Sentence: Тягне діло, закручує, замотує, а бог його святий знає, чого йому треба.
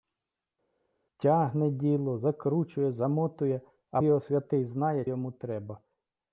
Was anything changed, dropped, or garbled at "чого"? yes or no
yes